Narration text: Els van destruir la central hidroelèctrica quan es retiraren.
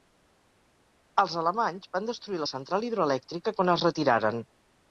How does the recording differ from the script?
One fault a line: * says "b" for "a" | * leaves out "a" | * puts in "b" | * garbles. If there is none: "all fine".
* puts in "alemanys"